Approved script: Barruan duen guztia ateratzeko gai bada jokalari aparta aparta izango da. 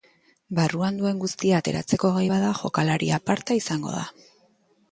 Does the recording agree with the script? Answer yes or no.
no